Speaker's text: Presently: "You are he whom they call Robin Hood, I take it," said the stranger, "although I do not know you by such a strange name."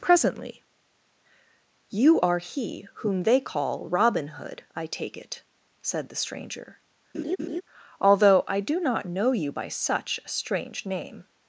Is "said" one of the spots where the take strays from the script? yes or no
no